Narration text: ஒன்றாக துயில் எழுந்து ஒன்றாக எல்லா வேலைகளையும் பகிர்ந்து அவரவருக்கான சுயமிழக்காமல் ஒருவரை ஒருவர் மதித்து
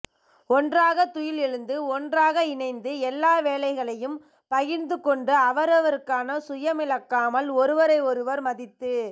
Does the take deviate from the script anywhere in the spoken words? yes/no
yes